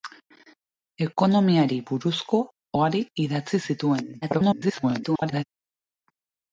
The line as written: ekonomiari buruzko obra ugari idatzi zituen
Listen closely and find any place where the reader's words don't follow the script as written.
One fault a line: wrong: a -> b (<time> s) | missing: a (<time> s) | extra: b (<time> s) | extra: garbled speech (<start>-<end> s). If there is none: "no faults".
missing: obra (2.4 s)
extra: garbled speech (4.2-5.4 s)